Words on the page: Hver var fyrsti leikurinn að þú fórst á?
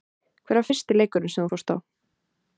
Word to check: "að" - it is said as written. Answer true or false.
false